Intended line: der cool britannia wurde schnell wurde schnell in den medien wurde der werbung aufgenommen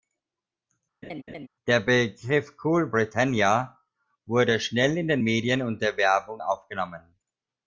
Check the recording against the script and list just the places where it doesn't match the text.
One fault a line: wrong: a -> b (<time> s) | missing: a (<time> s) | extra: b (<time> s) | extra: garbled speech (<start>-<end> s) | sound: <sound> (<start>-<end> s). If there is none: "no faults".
sound: laugh (1.0-1.5 s)
extra: begriff (1.8 s)
missing: wurde schnell (5.0 s)
wrong: wurde -> und (5.6 s)